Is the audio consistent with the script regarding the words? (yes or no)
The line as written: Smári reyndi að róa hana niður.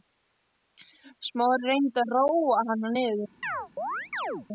yes